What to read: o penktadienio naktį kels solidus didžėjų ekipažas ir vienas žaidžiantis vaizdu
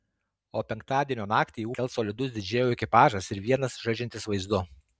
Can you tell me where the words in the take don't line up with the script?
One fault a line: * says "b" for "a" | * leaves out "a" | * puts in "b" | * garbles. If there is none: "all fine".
all fine